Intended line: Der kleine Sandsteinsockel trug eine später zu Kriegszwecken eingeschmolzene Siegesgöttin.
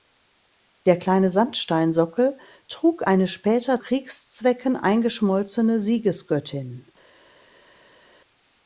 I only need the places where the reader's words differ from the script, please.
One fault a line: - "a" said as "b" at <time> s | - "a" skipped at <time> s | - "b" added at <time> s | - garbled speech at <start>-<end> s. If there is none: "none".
- "zu" skipped at 3.8 s